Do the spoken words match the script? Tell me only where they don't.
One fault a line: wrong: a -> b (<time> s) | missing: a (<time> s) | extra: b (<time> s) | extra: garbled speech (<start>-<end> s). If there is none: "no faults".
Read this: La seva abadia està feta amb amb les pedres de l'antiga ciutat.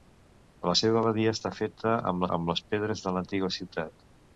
no faults